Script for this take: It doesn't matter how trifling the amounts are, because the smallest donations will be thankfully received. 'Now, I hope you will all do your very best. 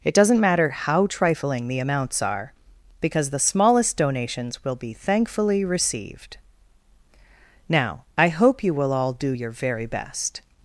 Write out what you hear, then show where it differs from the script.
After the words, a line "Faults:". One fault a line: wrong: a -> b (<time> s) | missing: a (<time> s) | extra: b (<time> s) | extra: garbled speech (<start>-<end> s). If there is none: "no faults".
It doesn't matter how trifling the amounts are, because the smallest donations will be thankfully received. 'Now, I hope you will all do your very best.
Faults:
no faults